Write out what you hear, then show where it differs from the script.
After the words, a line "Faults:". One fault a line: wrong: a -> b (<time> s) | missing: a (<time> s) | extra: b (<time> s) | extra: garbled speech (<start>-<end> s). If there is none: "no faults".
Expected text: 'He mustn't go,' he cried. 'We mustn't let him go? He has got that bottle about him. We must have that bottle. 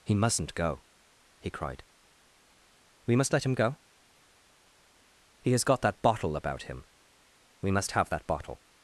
'He mustn't go,' he cried. 'We must let him go? He has got that bottle about him. We must have that bottle.
Faults:
wrong: mustn't -> must (3.2 s)